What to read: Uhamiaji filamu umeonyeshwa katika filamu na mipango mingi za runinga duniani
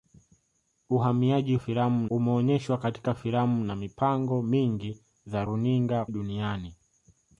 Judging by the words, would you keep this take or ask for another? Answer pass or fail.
pass